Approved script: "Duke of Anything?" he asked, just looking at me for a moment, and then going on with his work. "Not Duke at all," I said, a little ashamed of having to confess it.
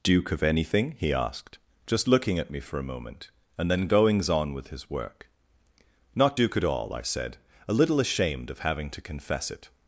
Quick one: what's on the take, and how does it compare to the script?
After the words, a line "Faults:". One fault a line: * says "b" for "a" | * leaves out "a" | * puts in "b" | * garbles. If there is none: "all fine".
"Duke of Anything?" he asked, just looking at me for a moment, and then goings on with his work. "Not Duke at all," I said, a little ashamed of having to confess it.
Faults:
* says "goings" for "going"